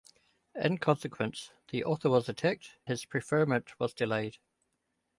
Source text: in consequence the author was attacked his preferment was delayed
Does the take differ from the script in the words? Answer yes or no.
no